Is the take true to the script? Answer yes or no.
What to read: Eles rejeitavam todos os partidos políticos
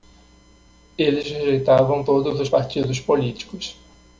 yes